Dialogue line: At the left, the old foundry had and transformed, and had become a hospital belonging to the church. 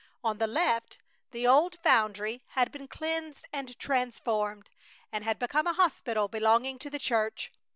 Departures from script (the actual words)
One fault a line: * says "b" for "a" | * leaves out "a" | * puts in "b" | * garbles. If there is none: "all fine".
* says "On" for "At"
* puts in "been cleansed"